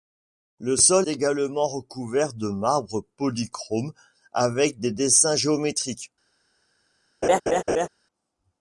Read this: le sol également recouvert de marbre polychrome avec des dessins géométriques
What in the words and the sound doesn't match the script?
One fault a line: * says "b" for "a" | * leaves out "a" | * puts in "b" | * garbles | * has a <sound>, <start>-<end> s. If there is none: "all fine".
* has a laugh, 7.2-7.9 s